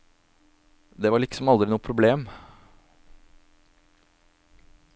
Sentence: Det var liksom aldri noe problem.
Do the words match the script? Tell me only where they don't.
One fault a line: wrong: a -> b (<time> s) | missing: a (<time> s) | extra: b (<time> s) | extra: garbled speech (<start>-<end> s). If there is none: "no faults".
no faults